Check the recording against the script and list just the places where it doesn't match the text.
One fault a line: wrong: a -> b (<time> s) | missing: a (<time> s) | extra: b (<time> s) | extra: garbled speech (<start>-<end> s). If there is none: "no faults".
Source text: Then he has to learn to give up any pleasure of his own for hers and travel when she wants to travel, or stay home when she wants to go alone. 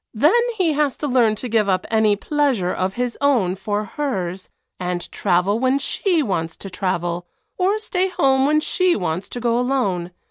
no faults